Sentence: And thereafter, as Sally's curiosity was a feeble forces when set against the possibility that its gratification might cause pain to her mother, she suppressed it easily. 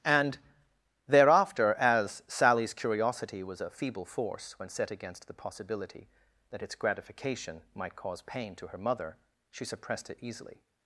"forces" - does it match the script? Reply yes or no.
no